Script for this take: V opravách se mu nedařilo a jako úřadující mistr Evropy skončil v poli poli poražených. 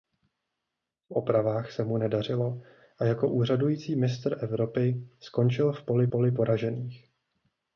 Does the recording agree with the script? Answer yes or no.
yes